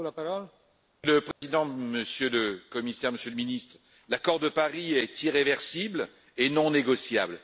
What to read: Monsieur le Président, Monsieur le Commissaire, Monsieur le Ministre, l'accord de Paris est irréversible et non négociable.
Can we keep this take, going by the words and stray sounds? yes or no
no